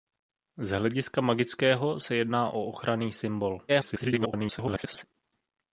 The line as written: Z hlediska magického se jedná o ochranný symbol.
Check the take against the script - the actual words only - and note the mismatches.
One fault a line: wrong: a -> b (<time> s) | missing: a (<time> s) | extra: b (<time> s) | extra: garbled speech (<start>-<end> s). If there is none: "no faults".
extra: garbled speech (3.7-5.0 s)